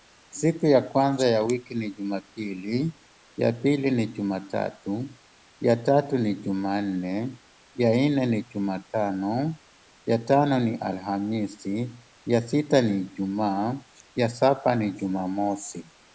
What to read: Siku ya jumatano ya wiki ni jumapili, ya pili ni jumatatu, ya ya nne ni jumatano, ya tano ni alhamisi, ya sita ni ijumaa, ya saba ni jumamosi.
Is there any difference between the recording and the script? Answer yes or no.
yes